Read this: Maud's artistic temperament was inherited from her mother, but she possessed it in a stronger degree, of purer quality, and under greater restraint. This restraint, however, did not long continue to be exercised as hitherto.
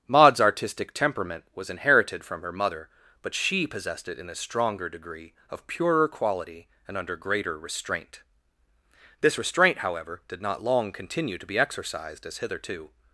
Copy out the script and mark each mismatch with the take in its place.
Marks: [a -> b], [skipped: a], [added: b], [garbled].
Maud's artistic temperament was inherited from her mother, but she possessed it in a stronger degree, of purer quality, and under greater restraint. This restraint, however, did not long continue to be exercised as hitherto.